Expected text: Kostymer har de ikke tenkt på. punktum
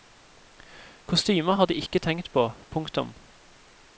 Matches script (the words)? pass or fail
pass